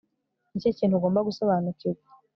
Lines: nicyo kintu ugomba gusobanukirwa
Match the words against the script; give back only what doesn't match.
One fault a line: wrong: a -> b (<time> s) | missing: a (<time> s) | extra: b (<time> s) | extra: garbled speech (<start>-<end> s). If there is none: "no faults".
no faults